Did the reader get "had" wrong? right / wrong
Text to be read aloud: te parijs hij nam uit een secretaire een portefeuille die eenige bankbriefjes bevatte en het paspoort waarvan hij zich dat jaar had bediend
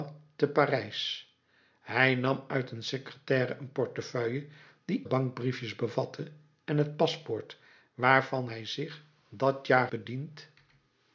wrong